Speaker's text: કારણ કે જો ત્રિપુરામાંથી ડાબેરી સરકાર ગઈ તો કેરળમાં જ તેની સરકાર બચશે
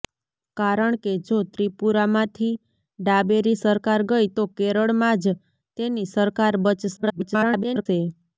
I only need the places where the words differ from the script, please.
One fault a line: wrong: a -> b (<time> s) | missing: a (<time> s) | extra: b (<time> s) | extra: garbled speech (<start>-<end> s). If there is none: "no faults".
extra: garbled speech (7.0-7.9 s)